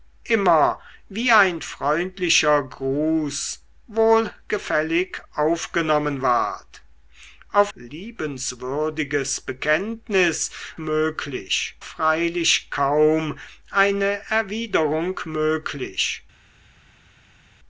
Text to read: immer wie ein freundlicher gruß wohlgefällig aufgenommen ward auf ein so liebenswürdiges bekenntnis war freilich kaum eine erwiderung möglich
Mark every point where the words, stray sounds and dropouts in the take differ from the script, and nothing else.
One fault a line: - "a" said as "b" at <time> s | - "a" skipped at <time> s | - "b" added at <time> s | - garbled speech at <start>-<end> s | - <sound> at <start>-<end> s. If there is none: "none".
- "ein so" skipped at 7.7 s
- "war" said as "möglich" at 10.8 s